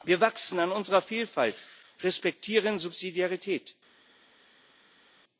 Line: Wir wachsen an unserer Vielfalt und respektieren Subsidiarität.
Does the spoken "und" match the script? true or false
false